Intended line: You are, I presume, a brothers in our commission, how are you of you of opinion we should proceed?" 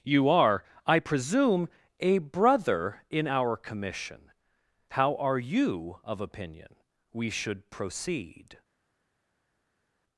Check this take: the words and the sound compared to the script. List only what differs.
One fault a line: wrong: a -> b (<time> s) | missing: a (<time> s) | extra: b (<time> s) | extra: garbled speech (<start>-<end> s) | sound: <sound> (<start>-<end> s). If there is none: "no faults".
wrong: brothers -> brother (2.2 s)
missing: you of (6.2 s)